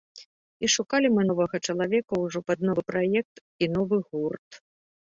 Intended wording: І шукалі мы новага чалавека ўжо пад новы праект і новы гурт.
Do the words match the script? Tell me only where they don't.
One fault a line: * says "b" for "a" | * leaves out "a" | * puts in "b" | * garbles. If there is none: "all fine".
all fine